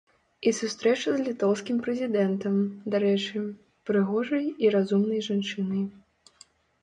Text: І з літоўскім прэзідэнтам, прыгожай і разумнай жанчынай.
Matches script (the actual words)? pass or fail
fail